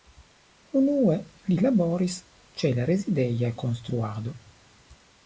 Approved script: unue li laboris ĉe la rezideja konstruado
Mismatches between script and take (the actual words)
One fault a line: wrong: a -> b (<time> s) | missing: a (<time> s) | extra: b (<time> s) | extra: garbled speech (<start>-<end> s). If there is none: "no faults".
no faults